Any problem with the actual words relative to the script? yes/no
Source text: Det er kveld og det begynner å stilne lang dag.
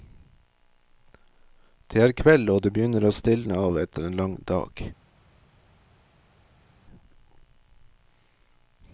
yes